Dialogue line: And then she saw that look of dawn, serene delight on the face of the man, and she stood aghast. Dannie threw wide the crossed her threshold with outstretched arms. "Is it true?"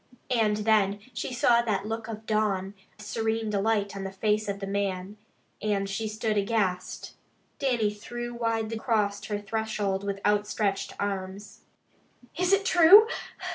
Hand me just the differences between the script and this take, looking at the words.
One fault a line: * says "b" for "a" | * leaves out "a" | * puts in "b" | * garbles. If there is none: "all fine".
all fine